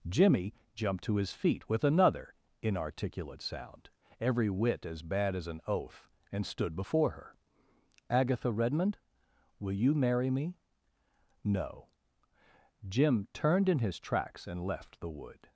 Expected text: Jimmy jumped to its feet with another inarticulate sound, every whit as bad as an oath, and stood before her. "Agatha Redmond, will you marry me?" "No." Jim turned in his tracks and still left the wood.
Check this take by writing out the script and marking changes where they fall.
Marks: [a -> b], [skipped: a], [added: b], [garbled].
Jimmy jumped to [its -> his] feet with another inarticulate sound, every whit as bad as an oath, and stood before her. "Agatha Redmond, will you marry me?" "No." Jim turned in his tracks and [skipped: still] left the wood.